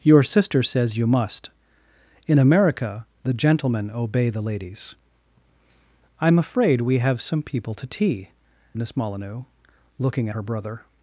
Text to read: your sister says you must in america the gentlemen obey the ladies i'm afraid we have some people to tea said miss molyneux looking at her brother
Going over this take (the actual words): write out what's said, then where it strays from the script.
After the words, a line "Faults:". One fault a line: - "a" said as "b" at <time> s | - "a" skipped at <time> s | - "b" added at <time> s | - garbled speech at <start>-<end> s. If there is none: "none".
your sister says you must in america the gentlemen obey the ladies i'm afraid we have some people to tea miss molyneux looking her brother
Faults:
- "said" skipped at 8.3 s
- "at" skipped at 10.3 s